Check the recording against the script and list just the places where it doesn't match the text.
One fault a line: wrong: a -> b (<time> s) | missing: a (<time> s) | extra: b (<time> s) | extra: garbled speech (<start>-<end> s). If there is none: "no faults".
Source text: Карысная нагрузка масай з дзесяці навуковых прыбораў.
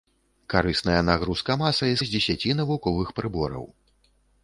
no faults